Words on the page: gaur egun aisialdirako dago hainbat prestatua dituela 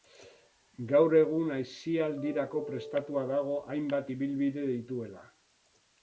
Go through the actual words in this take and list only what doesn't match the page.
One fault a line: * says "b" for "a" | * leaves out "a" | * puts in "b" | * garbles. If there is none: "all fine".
* puts in "prestatua"
* says "ibilbide" for "prestatua"